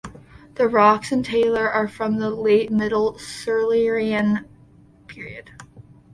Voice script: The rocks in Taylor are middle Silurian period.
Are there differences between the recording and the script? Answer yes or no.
yes